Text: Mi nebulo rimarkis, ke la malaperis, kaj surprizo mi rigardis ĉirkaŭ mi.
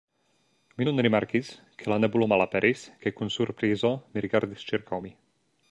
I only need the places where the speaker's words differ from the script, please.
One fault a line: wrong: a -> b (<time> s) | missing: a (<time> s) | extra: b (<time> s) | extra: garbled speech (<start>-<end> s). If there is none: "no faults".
wrong: nebulo -> nun (0.9 s)
extra: nebulo (2.0 s)
extra: kun (3.2 s)